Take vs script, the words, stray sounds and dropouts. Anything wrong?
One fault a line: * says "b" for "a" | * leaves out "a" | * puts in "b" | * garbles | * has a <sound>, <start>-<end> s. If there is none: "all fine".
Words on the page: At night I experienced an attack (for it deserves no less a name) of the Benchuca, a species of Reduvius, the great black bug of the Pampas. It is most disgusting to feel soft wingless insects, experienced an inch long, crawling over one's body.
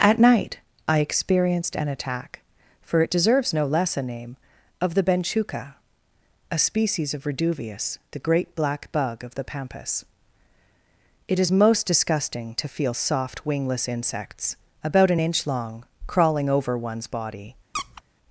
* says "about" for "experienced"
* has a squeak, 17.7-18.0 s